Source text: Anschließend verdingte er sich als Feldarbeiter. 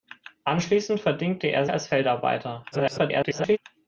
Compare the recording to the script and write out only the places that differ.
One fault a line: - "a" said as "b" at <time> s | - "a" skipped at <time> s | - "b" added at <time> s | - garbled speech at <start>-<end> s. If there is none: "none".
- "sich" skipped at 1.7 s
- garbled speech at 2.7-3.6 s